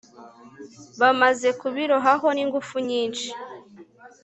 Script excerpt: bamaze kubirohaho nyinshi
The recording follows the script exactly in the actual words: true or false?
false